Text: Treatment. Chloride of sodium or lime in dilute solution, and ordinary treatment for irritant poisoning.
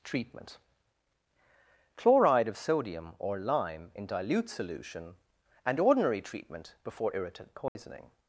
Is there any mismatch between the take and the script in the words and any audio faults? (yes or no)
yes